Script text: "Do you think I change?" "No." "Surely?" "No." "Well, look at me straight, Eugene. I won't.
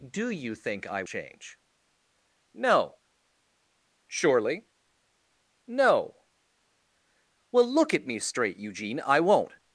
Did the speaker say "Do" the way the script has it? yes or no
yes